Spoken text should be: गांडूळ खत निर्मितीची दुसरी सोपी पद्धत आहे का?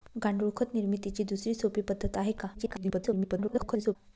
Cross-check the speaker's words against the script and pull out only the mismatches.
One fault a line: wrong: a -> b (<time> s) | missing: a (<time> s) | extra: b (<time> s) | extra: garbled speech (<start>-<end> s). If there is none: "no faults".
extra: garbled speech (2.5-4.0 s)